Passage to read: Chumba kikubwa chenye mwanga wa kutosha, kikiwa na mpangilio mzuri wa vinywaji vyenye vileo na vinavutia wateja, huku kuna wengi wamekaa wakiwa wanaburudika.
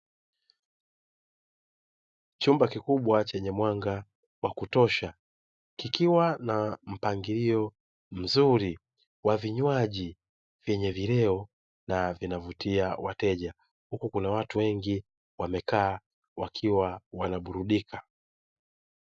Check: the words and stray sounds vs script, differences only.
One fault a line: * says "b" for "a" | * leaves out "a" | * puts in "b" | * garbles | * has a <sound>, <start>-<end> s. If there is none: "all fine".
* puts in "watu"